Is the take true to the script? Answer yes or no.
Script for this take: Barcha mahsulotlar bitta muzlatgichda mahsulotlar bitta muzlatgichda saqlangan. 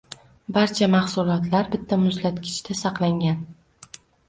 no